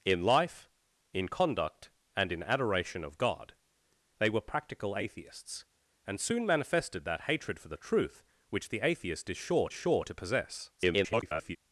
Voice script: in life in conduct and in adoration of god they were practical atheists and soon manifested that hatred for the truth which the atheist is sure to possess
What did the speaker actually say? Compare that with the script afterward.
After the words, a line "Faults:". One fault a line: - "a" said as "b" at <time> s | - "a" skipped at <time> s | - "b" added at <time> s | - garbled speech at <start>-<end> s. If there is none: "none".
in life in conduct and in adoration of god they were practical atheists and soon manifested that hatred for the truth which the atheist is sure sure to possess [garbled]
Faults:
- "sure" added at 9.7 s
- garbled speech at 10.8-11.6 s